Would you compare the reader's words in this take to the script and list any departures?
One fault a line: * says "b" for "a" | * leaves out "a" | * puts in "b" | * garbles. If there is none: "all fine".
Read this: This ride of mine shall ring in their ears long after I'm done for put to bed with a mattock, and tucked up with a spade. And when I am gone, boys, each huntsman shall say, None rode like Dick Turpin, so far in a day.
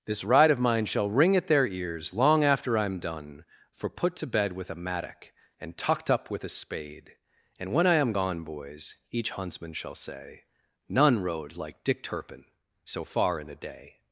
* says "at" for "in"